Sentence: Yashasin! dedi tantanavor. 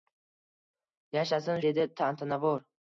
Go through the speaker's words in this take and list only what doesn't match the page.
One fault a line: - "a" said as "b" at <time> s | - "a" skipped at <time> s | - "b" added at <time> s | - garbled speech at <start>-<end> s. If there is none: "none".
none